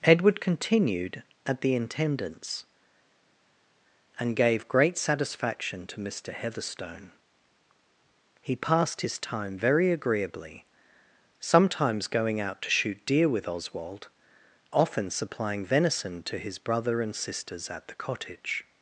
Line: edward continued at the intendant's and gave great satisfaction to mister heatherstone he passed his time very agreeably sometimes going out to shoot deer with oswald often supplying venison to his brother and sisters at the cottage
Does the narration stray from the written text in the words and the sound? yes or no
no